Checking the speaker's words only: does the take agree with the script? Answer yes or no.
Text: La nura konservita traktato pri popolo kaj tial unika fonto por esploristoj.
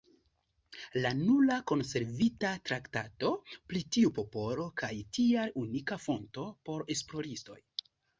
no